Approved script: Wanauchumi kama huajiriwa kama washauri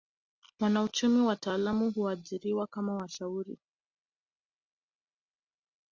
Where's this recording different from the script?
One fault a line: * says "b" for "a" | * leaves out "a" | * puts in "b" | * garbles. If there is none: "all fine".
* says "wataalamu" for "kama"